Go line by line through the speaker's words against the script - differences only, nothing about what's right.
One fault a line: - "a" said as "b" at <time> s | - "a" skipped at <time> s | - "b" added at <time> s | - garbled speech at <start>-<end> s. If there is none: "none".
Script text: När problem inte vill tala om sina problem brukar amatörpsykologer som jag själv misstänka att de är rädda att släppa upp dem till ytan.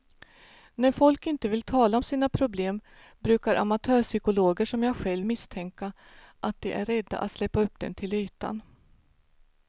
- "problem" said as "folk" at 0.9 s